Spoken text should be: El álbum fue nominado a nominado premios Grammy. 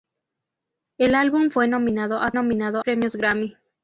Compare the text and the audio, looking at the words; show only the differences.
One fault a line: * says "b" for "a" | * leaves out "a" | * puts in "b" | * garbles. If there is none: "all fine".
all fine